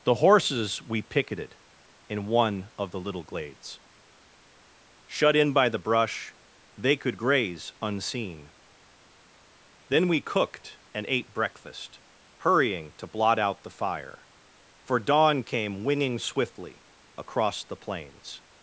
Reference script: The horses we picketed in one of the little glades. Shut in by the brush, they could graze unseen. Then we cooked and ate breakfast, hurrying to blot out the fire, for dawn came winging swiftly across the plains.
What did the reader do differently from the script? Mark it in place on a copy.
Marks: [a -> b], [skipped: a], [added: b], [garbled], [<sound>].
The horses we picketed in one of the little glades. Shut in by the brush, they could graze unseen. Then we cooked and ate breakfast, hurrying to blot out the fire, for dawn came winging swiftly across the plains.